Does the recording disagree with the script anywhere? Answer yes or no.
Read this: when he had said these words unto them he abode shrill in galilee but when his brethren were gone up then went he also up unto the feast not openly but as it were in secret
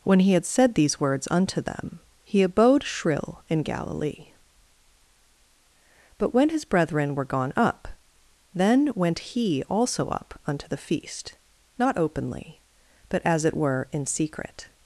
no